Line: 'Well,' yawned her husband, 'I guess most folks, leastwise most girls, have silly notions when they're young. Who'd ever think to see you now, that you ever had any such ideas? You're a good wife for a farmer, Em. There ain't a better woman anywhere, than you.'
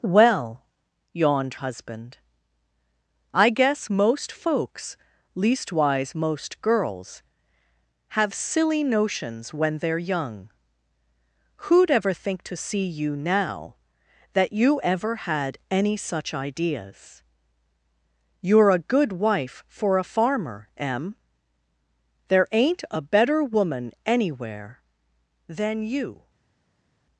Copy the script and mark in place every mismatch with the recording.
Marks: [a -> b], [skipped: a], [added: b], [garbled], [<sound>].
'Well,' yawned [skipped: her] husband, 'I guess most folks, leastwise most girls, have silly notions when they're young. Who'd ever think to see you now, that you ever had any such ideas? You're a good wife for a farmer, Em. There ain't a better woman anywhere, than you.'